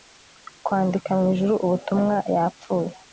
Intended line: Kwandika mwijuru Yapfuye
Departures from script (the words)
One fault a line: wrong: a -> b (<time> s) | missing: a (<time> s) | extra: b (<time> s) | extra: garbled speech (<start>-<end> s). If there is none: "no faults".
extra: ubutumwa (1.6 s)